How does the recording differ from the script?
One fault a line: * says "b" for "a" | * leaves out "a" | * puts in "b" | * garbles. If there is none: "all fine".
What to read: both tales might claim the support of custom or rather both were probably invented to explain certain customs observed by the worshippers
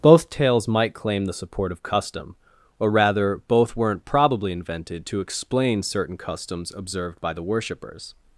* says "weren't" for "were"